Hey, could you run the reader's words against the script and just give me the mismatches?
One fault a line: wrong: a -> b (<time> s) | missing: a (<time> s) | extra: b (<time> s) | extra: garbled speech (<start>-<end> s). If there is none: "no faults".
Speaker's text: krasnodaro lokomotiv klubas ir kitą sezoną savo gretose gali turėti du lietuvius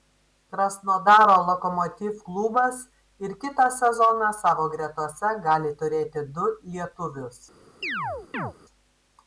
no faults